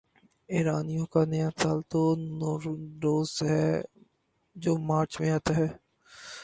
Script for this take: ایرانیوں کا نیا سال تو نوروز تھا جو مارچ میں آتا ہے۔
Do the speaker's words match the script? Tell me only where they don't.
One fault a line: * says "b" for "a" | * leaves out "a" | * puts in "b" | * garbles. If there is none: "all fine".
* says "ہے" for "تھا"